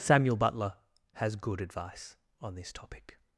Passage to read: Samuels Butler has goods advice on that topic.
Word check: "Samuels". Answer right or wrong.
wrong